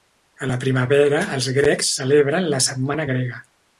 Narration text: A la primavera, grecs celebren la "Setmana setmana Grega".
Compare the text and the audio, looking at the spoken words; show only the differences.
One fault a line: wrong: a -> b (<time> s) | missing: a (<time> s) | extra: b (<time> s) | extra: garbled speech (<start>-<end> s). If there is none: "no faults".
extra: els (1.4 s)
missing: setmana (3.1 s)